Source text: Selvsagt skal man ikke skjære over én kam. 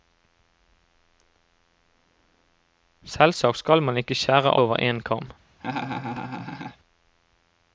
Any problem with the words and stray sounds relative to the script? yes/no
yes